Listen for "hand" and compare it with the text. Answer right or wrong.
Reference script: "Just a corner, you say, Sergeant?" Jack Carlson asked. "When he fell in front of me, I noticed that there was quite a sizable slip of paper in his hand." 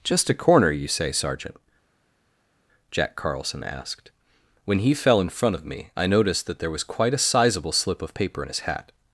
wrong